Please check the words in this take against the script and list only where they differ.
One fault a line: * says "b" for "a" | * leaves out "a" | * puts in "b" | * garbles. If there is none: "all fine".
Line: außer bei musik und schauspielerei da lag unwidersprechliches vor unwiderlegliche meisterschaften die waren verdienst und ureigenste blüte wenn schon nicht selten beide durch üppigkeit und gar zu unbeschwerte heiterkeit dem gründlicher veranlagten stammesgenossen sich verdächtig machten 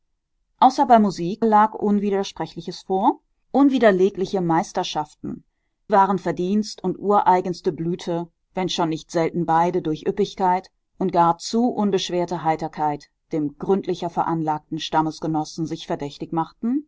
* leaves out "und schauspielerei da"
* leaves out "die"